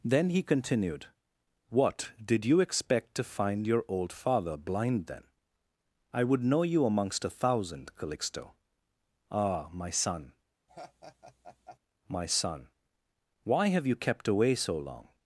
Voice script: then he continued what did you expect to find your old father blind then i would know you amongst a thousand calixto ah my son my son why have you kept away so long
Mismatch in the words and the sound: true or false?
true